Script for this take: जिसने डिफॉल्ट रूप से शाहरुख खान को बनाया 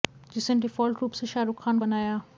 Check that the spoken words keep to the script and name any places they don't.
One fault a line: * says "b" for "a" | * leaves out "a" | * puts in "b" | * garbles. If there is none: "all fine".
* leaves out "को"